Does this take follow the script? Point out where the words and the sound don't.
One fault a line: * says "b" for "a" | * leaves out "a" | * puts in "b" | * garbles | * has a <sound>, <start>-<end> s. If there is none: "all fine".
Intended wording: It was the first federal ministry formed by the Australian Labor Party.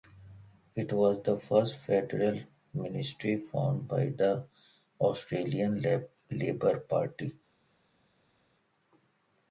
all fine